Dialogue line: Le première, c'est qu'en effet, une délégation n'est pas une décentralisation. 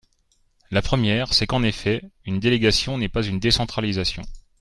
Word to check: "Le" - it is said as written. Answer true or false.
false